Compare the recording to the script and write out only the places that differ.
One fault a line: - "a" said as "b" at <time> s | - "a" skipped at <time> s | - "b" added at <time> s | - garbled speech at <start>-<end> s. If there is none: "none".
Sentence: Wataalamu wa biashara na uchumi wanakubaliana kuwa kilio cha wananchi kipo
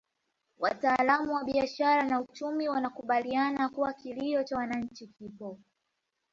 none